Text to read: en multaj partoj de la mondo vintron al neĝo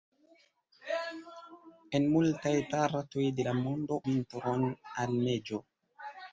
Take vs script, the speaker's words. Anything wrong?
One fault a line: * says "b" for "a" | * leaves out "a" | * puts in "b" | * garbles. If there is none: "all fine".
all fine